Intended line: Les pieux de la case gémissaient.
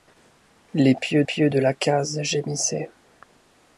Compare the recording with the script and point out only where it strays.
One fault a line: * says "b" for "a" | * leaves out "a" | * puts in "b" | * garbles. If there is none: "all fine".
* puts in "pieux"